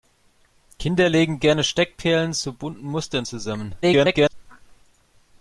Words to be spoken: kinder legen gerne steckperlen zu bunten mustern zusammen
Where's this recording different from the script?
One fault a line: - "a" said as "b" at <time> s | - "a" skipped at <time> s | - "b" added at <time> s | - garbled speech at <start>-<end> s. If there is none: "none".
- garbled speech at 3.8-4.3 s